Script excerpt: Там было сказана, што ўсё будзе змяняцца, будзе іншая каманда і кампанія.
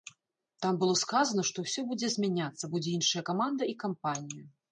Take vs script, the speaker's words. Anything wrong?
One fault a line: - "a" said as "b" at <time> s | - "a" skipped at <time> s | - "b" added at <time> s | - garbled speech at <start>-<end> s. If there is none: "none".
none